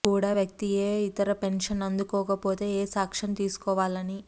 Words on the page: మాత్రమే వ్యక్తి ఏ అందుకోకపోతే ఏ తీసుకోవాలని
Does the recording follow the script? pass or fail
fail